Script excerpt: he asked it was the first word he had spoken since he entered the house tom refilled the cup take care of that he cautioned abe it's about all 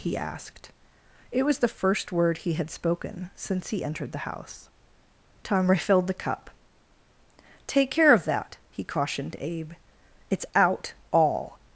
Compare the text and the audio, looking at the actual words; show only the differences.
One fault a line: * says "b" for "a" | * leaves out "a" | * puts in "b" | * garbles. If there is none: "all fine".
* says "out" for "about"